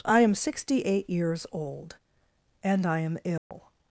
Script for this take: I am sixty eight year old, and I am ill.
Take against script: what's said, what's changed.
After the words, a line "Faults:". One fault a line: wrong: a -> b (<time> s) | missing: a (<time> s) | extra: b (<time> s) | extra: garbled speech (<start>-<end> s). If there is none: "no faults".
I am sixty eight years old, and I am ill.
Faults:
wrong: year -> years (1.1 s)